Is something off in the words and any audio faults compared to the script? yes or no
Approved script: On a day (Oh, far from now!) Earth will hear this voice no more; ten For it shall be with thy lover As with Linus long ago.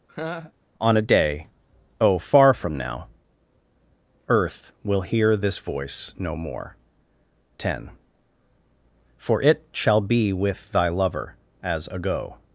yes